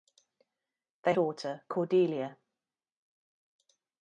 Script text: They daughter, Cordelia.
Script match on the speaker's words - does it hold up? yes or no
yes